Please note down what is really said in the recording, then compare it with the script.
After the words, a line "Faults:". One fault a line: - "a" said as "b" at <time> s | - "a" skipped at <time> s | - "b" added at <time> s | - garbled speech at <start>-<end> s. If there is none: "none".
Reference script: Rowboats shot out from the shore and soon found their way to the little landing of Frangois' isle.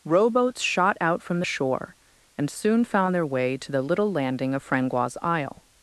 Rowboats shot out from the shore and soon found their way to the little landing of Frangois' isle.
Faults:
none